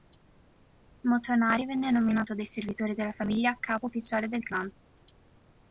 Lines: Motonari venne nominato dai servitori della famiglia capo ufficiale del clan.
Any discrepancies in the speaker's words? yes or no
no